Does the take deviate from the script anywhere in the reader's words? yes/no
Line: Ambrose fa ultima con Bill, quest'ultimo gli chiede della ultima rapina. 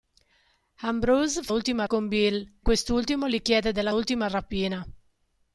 no